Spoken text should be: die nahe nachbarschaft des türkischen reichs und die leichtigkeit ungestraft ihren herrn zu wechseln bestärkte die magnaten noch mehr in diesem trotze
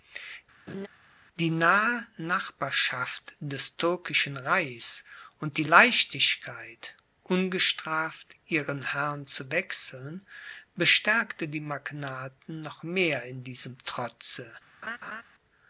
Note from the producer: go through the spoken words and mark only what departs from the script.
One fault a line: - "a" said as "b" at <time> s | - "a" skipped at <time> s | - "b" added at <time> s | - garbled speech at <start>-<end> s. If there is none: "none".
none